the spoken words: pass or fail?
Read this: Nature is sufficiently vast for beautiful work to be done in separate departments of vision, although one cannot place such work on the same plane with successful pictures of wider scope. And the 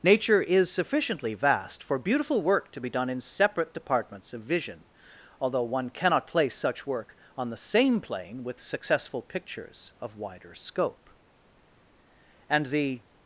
pass